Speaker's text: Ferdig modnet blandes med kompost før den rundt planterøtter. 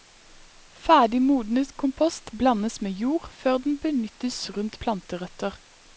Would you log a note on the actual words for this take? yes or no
yes